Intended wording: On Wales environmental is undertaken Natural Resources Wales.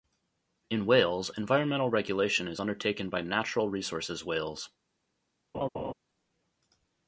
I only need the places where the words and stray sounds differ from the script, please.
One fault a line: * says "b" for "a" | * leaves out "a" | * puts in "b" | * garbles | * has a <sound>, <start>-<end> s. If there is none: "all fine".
* says "In" for "On"
* puts in "regulation"
* puts in "by"
* has a laugh, 5.5-5.9 s